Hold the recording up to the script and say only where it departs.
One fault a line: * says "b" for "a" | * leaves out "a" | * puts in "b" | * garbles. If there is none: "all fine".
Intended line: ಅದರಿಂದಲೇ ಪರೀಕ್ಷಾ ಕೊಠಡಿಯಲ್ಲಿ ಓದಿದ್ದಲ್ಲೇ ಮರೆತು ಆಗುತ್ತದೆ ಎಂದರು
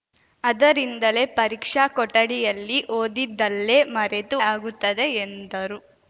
all fine